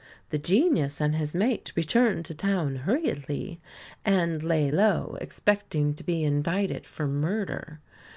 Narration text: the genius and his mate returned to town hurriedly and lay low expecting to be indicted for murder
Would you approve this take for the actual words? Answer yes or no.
yes